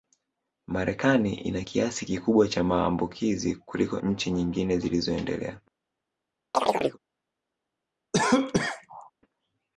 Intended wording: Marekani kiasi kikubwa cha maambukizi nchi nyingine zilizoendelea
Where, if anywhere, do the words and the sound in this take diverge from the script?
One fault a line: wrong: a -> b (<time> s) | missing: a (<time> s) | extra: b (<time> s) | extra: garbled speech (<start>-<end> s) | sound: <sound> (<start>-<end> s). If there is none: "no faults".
extra: ina (1.3 s)
extra: kuliko (3.6 s)
sound: chirp (6.5-7.0 s)
sound: cough (8.1-9.1 s)